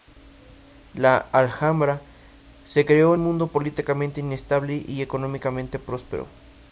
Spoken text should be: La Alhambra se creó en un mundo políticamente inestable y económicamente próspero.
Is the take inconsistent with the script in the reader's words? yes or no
yes